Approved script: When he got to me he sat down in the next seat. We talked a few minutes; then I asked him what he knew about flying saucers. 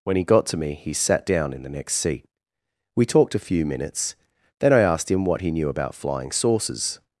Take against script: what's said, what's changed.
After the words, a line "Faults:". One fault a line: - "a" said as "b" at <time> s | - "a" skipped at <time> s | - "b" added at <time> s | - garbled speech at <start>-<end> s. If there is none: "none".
When he got to me he sat down in the next seat. We talked a few minutes; then I asked him what he knew about flying saucers.
Faults:
none